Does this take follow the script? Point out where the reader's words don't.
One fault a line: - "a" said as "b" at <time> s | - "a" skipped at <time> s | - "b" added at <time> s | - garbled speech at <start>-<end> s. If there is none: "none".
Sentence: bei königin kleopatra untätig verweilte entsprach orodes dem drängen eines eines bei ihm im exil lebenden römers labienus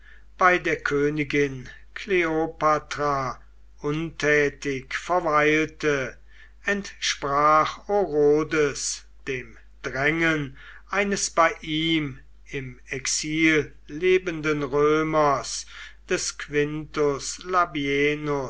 - "der" added at 0.6 s
- "eines" skipped at 11.3 s
- "des quintus" added at 16.1 s